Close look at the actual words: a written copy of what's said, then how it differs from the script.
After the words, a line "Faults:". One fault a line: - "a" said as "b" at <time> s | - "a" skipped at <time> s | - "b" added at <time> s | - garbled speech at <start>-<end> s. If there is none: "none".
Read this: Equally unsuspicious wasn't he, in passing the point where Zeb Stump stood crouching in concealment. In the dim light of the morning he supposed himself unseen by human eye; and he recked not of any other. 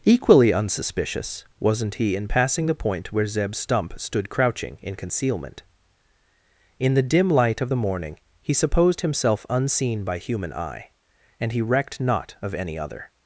Equally unsuspicious wasn't he, in passing the point where Zeb Stump stood crouching in concealment. In the dim light of the morning he supposed himself unseen by human eye; and he recked not of any other.
Faults:
none